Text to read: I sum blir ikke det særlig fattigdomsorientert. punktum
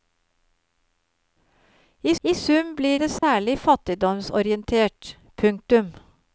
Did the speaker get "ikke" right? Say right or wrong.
wrong